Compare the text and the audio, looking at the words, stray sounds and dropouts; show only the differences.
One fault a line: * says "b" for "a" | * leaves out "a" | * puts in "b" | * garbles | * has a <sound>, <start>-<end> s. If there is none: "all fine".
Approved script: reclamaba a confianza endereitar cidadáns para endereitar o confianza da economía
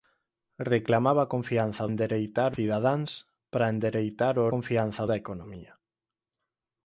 all fine